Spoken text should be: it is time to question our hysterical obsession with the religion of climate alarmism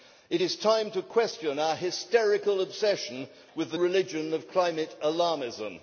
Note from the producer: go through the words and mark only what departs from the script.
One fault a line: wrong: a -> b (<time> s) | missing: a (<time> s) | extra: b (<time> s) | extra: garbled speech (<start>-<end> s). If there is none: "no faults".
no faults